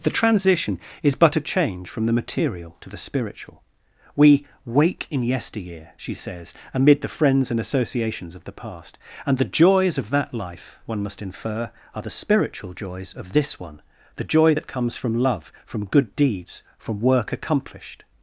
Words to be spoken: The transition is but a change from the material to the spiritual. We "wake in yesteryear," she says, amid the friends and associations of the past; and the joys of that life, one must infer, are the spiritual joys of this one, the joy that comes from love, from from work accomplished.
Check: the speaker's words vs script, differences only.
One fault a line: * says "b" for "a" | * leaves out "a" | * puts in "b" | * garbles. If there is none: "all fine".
* puts in "good deeds"